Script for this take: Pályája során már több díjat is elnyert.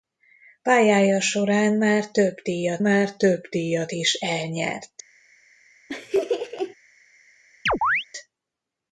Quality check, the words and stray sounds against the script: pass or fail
fail